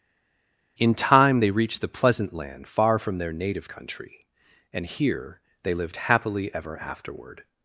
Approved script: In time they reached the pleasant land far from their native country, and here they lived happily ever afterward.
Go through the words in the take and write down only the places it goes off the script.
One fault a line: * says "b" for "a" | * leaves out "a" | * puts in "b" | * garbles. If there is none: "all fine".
all fine